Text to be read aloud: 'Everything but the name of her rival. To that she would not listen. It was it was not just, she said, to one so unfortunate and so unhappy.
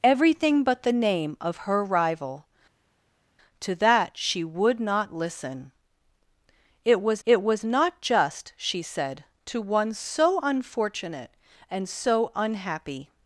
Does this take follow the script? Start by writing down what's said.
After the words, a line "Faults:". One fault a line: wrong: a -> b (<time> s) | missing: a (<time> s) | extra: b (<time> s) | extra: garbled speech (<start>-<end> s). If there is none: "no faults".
'Everything but the name of her rival. To that she would not listen. It was it was not just, she said, to one so unfortunate and so unhappy.
Faults:
no faults